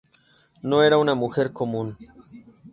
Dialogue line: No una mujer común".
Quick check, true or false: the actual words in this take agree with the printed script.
false